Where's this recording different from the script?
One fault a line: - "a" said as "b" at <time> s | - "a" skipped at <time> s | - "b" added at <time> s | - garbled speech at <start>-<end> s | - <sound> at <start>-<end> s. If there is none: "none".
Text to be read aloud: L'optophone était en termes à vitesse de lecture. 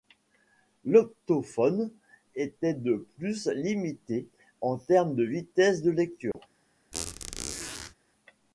- "de plus limité" added at 2.7 s
- "à" said as "de" at 5.1 s
- dropout at 6.3-6.3 s
- squeak at 6.9-7.9 s